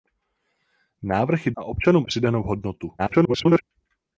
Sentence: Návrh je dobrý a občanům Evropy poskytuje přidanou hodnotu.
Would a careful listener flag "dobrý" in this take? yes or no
yes